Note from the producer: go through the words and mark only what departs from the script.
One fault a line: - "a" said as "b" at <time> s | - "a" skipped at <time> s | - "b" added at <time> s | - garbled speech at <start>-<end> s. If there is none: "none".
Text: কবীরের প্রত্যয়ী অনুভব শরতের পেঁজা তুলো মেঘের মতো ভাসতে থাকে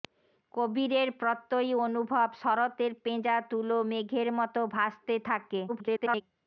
- garbled speech at 5.7-6.2 s